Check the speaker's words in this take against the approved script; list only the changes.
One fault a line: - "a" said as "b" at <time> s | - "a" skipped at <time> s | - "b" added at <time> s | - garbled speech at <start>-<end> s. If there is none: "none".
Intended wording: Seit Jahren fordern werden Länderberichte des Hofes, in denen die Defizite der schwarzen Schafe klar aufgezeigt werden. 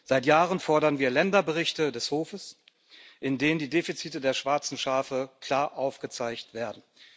- "werden" said as "wir" at 1.0 s